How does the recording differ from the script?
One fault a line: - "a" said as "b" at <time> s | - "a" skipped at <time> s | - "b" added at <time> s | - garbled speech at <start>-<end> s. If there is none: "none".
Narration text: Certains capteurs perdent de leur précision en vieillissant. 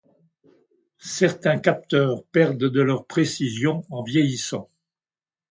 none